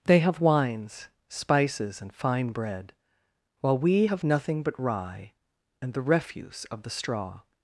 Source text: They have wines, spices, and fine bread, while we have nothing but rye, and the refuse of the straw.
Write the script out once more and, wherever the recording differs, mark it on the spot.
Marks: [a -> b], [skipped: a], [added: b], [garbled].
They have wines, spices, and fine bread, while we have nothing but rye, and the refuse of the straw.